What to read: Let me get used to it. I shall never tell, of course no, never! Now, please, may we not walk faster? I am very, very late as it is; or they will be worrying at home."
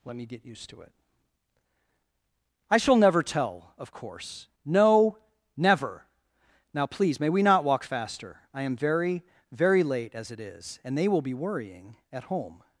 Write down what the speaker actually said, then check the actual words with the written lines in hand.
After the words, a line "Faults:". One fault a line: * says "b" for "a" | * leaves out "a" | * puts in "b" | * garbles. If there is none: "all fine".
Let me get used to it. I shall never tell, of course no, never! Now, please, may we not walk faster? I am very, very late as it is; and they will be worrying at home."
Faults:
* says "and" for "or"